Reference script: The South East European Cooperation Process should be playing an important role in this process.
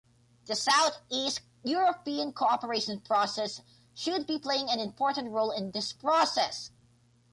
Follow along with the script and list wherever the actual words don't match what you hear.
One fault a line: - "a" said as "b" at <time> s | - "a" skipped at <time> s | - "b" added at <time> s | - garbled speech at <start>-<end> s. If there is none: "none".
none